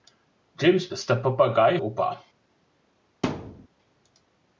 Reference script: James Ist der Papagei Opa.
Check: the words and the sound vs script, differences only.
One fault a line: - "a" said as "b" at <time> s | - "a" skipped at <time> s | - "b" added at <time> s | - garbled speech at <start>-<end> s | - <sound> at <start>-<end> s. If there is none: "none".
- thud at 3.2-3.7 s